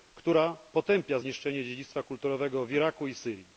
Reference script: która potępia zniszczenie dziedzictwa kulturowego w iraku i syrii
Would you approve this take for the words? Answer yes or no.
yes